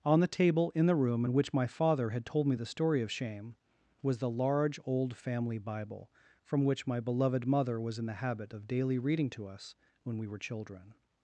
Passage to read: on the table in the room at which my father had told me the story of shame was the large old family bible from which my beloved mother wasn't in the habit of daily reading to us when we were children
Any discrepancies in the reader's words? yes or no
yes